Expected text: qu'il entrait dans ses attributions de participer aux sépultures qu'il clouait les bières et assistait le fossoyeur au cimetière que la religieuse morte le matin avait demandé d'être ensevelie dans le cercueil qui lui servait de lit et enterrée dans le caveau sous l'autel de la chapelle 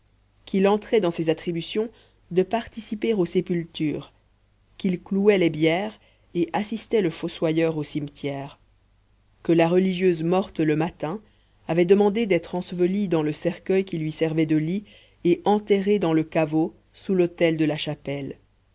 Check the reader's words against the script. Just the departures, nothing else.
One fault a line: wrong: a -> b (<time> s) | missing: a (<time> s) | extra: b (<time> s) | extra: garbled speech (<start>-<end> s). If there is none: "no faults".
no faults